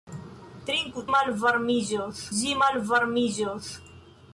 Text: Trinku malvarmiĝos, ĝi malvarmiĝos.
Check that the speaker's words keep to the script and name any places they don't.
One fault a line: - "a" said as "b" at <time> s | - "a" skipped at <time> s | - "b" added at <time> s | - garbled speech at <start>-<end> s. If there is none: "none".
none